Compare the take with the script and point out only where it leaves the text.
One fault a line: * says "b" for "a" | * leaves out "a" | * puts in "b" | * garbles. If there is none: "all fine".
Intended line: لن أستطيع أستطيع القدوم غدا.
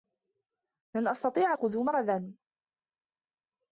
* leaves out "أستطيع"